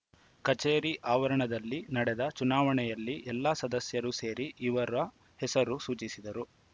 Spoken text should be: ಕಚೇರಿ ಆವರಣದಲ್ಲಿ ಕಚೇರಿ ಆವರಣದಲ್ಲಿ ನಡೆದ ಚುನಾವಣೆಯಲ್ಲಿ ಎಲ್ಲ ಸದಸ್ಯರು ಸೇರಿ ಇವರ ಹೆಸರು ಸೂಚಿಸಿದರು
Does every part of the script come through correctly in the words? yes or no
no